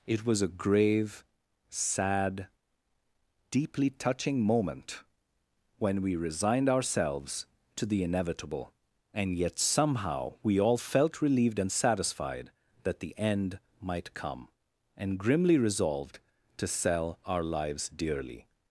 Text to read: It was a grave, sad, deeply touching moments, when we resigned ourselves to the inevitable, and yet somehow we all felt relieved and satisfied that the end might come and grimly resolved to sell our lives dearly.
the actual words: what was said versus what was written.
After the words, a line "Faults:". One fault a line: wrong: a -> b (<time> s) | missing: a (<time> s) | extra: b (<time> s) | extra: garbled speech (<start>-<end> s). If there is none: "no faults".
It was a grave, sad, deeply touching moment, when we resigned ourselves to the inevitable, and yet somehow we all felt relieved and satisfied that the end might come and grimly resolved to sell our lives dearly.
Faults:
wrong: moments -> moment (4.4 s)